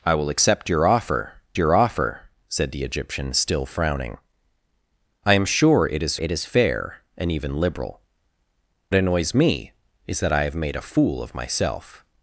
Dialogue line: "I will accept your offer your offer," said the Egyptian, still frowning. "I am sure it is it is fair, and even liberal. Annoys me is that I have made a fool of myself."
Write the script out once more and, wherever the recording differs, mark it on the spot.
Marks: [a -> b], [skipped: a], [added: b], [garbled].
"I will accept your offer your offer," said the Egyptian, still frowning. "I am sure it is it is fair, and even liberal. Annoys me is that I have made a fool of myself."